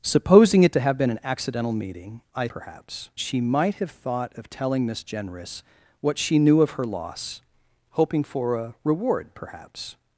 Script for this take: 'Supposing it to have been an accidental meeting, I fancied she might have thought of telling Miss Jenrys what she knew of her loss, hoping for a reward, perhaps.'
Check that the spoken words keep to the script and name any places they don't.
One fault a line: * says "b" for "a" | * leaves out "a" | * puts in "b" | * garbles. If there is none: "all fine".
* says "perhaps" for "fancied"